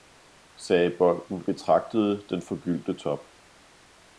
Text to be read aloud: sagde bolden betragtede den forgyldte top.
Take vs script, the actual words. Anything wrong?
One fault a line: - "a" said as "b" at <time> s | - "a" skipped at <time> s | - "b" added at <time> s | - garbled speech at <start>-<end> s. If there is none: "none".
none